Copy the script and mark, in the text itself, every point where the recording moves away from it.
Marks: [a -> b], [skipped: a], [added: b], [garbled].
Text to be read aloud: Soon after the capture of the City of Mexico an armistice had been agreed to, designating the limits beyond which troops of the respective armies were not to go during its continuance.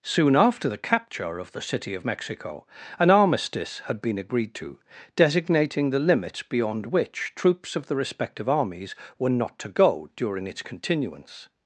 Soon after the capture of the City of Mexico an armistice had been agreed to, designating the limits beyond which troops of the respective armies were not to go during its continuance.